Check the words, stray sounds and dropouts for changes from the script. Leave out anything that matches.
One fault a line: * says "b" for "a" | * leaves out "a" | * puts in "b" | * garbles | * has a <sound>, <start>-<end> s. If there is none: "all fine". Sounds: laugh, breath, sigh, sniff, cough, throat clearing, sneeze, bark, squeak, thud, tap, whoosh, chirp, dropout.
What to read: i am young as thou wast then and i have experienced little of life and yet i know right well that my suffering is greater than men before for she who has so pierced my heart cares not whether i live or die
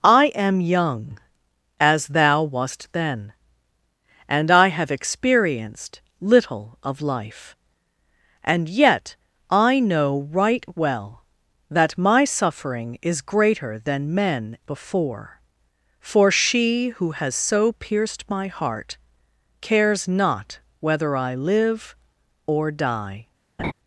* has a laugh, 23.6-23.7 s